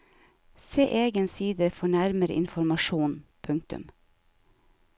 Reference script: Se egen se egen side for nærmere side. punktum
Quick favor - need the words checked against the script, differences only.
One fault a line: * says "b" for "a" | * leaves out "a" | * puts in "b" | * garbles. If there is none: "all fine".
* leaves out "se egen"
* says "informasjon" for "side"